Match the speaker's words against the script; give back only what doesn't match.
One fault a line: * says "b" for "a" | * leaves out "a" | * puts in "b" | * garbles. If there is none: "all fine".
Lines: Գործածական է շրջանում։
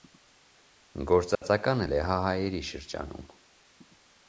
* puts in "լեհահայերի"